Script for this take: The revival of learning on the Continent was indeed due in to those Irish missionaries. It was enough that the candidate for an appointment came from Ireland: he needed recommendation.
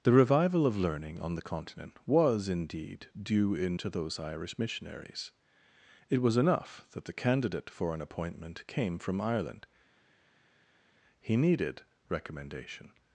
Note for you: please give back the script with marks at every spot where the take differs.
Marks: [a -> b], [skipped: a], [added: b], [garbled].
The revival of learning on the Continent was indeed due in to those Irish missionaries. It was enough that the candidate for an appointment came from Ireland: he needed recommendation.